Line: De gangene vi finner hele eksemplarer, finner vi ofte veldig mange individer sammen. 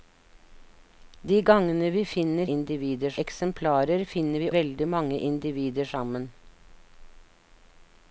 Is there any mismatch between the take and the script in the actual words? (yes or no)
yes